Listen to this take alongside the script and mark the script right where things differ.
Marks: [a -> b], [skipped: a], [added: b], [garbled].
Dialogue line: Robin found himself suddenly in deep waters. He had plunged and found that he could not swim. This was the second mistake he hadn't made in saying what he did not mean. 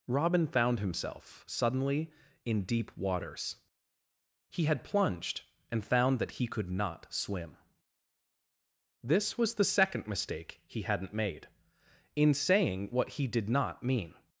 Robin found himself suddenly in deep waters. He had plunged and found that he could not swim. This was the second mistake he hadn't made in saying what he did not mean.